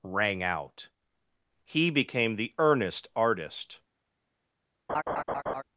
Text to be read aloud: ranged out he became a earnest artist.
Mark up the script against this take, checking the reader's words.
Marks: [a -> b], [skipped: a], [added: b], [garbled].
[ranged -> rang] out he became [a -> the] earnest artist.